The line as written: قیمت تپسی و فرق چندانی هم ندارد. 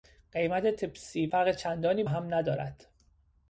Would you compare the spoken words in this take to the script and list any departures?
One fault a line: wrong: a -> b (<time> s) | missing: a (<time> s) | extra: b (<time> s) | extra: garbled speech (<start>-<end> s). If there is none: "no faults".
no faults